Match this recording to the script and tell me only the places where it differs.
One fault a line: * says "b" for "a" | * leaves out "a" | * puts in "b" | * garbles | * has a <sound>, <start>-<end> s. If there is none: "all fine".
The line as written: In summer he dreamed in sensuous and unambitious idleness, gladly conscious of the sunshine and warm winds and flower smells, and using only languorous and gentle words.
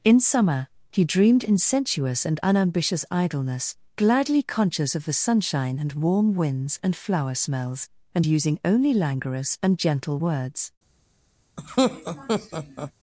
* has a laugh, 11.6-12.9 s